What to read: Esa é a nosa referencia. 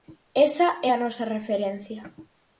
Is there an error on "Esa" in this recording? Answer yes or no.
no